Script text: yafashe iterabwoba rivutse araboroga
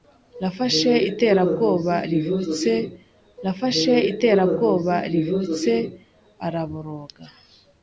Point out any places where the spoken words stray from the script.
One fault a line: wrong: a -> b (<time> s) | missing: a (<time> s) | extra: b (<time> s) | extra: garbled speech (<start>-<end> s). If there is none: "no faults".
extra: yafashe iterabwoba rivutse (3.5 s)